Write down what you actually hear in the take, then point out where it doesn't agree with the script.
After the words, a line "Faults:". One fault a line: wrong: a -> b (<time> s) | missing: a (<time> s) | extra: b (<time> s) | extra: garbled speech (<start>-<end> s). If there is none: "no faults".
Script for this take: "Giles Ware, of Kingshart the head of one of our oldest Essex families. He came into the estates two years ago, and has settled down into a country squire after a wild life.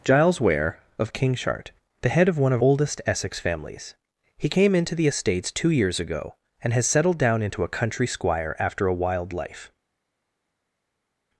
"Giles Ware, of Kingshart the head of one of oldest Essex families. He came into the estates two years ago, and has settled down into a country squire after a wild life.
Faults:
missing: our (2.6 s)